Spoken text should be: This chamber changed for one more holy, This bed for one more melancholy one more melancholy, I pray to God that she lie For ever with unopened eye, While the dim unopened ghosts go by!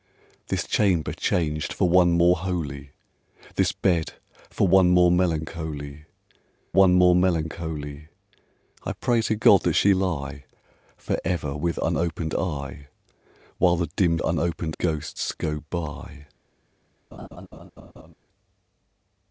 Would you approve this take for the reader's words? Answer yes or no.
yes